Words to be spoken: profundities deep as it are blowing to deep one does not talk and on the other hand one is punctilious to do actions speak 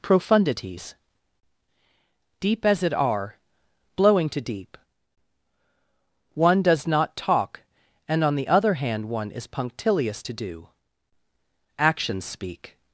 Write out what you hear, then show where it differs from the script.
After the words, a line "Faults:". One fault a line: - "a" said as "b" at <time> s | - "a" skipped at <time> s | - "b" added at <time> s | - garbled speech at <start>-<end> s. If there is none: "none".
profundities deep as it are blowing to deep one does not talk and on the other hand one is punctilious to do actions speak
Faults:
none